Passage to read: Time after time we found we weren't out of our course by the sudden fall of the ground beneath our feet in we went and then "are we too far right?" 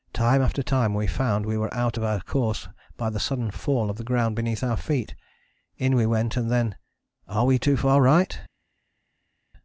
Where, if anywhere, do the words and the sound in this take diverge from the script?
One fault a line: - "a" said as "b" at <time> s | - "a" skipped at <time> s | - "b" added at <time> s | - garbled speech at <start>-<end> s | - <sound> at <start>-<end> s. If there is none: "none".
- "weren't" said as "were" at 1.6 s